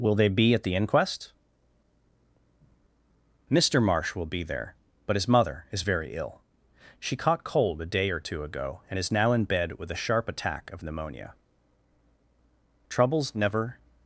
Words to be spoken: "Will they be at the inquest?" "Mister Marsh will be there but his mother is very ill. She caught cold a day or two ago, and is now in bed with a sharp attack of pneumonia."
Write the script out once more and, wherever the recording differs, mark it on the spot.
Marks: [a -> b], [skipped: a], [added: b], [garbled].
"Will they be at the inquest?" "Mister Marsh will be there but his mother is very ill. She caught cold a day or two ago, and is now in bed with a sharp attack of pneumonia." [added: Troubles never]